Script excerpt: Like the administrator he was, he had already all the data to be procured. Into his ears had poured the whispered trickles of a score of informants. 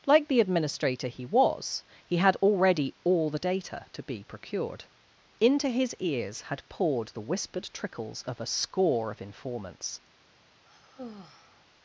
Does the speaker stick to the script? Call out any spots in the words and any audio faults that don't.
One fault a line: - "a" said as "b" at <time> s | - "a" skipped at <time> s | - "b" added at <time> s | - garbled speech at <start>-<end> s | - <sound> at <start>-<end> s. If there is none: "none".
- sigh at 10.6-11.6 s